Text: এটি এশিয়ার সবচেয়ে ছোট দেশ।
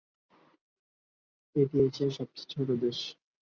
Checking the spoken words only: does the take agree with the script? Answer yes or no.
yes